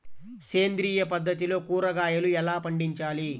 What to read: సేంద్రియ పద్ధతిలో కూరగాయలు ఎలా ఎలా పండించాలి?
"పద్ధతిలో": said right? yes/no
yes